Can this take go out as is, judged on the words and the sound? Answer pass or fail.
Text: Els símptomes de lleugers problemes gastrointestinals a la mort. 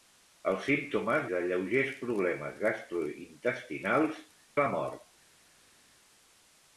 pass